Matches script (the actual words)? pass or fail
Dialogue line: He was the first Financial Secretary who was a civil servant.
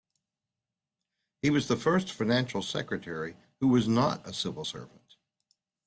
fail